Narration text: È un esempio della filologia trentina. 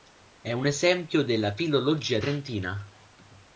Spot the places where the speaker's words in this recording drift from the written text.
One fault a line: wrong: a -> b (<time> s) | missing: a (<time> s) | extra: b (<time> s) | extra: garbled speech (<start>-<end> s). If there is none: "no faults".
no faults